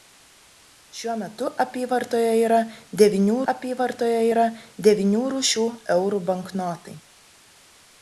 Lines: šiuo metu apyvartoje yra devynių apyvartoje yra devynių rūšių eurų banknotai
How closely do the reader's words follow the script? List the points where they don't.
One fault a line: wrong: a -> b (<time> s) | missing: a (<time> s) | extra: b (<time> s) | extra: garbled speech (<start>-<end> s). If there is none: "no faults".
no faults